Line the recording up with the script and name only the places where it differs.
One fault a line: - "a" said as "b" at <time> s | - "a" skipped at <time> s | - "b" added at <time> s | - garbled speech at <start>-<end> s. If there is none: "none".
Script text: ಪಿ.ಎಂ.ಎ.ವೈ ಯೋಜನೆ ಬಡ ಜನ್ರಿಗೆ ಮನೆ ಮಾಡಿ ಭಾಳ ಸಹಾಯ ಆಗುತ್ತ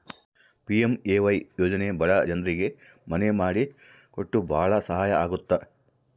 - "ಕೊಟ್ಟು" added at 4.1 s